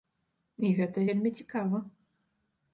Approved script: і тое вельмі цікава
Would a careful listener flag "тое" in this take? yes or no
yes